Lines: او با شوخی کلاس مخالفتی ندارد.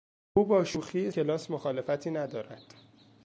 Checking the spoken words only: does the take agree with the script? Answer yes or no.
yes